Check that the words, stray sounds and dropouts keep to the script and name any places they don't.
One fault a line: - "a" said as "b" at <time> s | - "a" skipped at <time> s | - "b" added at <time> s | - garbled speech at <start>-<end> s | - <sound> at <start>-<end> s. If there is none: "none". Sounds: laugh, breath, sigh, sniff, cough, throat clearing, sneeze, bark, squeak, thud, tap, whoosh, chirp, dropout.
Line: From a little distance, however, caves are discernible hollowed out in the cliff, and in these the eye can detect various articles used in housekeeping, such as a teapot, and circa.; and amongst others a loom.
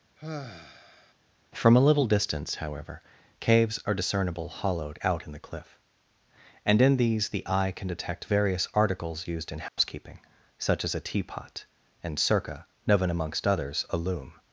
- sigh at 0.2-1.1 s
- dropout at 9.7-9.8 s
- "and" said as "known" at 12.9 s